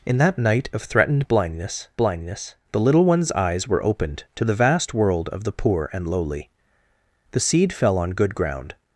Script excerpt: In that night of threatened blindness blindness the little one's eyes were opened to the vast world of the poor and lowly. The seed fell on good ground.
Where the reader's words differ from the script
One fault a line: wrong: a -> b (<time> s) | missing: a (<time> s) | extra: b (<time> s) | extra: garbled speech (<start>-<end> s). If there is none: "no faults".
no faults